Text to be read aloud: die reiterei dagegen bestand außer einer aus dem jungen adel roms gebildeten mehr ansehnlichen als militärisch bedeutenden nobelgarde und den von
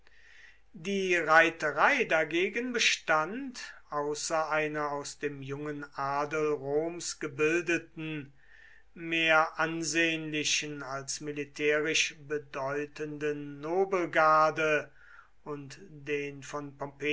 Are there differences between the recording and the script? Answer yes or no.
no